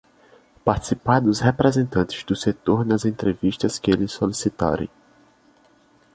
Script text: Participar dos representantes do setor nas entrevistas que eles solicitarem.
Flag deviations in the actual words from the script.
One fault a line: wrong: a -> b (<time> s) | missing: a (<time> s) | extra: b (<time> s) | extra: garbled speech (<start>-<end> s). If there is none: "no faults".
no faults